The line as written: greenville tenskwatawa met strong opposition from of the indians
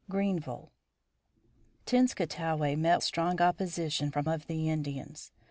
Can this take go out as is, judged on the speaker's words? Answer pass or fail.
pass